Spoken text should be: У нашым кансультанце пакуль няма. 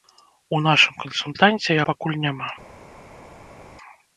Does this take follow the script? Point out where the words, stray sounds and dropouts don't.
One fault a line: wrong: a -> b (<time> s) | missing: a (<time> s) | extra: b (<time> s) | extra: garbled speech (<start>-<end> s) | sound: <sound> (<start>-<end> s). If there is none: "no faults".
no faults